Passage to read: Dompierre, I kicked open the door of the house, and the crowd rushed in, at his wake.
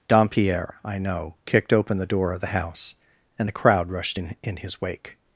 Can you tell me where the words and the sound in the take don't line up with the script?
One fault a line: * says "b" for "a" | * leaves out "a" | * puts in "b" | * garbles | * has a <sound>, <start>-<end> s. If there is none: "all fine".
* puts in "know"
* says "in" for "at"